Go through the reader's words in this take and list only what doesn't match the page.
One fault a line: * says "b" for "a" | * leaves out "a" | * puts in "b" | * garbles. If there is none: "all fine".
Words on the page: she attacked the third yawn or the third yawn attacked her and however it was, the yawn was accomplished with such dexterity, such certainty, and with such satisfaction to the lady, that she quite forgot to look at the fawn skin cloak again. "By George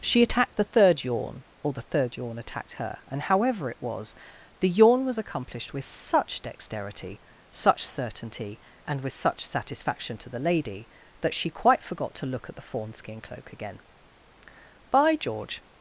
all fine